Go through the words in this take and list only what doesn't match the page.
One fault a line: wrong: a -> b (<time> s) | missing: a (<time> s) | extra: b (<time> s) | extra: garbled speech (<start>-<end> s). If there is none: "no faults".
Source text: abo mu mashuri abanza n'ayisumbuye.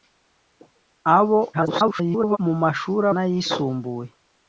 extra: garbled speech (1.5-2.4 s)
missing: abanza (3.1 s)